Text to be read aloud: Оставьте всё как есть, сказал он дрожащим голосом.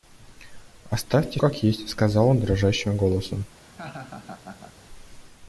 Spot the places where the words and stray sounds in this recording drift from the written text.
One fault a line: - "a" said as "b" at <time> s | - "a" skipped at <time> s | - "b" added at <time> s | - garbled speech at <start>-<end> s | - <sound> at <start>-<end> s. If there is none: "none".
- "всё" skipped at 1.4 s
- laugh at 3.6-4.7 s